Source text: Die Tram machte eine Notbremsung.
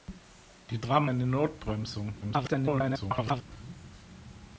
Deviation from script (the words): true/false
true